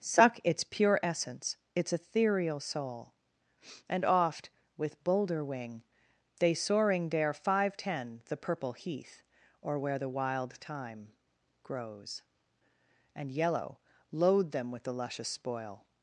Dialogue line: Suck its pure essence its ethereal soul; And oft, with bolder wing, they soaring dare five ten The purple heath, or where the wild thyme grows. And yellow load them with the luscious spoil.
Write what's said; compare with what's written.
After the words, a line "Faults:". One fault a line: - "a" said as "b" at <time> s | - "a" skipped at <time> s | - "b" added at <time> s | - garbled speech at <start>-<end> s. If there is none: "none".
Suck its pure essence its ethereal soul; And oft, with bolder wing, they soaring dare five ten The purple heath, or where the wild thyme grows. And yellow load them with the luscious spoil.
Faults:
none